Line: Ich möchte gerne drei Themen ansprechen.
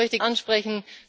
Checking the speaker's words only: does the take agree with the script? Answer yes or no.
no